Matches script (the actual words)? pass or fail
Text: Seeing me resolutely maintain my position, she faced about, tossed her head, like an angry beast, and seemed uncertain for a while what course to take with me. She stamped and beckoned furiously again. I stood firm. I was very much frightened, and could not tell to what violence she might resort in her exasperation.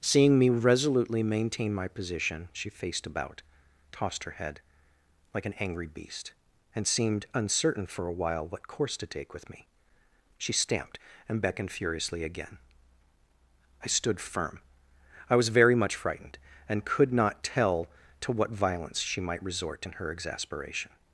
pass